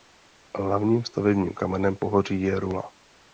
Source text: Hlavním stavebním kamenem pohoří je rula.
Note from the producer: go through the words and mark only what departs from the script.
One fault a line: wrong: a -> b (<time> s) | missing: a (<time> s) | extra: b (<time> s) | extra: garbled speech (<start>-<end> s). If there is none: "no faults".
no faults